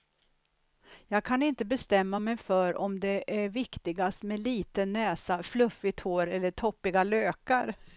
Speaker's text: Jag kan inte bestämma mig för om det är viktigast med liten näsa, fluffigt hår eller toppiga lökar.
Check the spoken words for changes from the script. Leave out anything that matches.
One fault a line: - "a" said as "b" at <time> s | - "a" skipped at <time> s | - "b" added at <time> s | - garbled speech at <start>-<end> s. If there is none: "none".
none